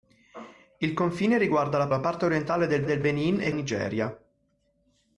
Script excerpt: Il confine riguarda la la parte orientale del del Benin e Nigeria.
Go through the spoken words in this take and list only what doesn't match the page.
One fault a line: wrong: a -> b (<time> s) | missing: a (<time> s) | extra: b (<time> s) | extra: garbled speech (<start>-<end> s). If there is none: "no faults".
no faults